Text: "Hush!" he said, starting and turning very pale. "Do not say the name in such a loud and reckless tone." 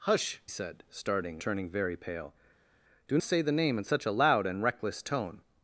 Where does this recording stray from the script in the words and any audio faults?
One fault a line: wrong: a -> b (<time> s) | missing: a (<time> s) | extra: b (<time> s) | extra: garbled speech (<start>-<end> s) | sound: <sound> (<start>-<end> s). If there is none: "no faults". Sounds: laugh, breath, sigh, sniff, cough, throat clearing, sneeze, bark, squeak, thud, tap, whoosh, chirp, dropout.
missing: he (0.4 s)
missing: and (1.4 s)
missing: not (3.2 s)